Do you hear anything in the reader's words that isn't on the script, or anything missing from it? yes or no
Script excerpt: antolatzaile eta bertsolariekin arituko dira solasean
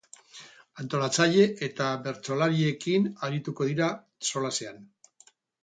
no